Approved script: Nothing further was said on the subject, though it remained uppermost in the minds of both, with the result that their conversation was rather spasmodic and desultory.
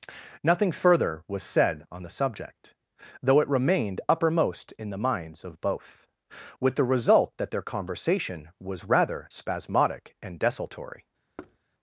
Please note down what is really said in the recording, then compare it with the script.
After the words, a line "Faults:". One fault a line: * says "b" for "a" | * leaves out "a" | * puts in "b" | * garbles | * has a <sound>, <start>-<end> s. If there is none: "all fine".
Nothing further was said on the subject, though it remained uppermost in the minds of both, with the result that their conversation was rather spasmodic and desultory.
Faults:
* has a thud, 11.4-11.6 s